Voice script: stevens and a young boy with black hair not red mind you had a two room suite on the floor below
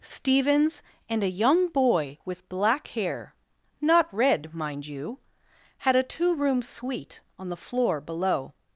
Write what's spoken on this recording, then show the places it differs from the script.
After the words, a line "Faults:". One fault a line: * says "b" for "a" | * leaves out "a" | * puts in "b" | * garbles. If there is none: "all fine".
stevens and a young boy with black hair not red mind you had a two room suite on the floor below
Faults:
all fine